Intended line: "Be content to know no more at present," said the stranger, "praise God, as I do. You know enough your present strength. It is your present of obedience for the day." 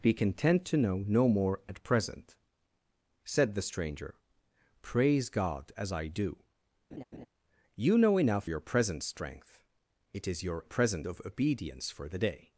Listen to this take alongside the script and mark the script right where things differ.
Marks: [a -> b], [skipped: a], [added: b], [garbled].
"Be content to know no more at present," said the stranger, "praise God, as I do. You know enough your present strength. It is your present of obedience for the day."